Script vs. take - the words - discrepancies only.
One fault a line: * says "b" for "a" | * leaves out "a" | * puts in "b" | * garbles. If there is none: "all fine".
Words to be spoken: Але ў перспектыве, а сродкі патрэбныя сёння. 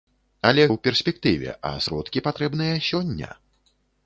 all fine